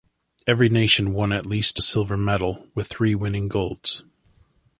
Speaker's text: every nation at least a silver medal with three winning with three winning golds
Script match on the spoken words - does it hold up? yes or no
no